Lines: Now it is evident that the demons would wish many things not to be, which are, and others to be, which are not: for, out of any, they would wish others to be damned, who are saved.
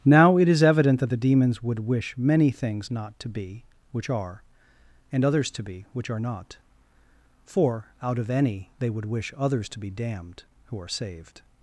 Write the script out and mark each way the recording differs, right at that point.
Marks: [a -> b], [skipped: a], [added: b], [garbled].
Now it is evident that the demons would wish many things not to be, which are, and others to be, which are not: for, out of any, they would wish others to be damned, who are saved.